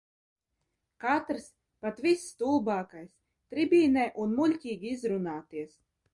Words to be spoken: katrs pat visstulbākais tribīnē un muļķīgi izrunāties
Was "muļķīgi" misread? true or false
false